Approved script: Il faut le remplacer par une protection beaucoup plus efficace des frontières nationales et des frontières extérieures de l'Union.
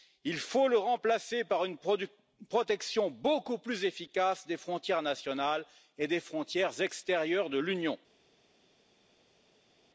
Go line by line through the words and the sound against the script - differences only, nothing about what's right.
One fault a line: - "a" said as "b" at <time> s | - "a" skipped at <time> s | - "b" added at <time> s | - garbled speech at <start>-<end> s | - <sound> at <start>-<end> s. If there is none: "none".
none